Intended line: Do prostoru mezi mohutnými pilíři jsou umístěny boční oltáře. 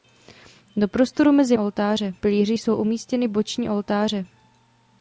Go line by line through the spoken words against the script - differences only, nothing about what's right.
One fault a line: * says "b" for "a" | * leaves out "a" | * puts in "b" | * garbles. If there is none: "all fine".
* says "oltáře" for "mohutnými"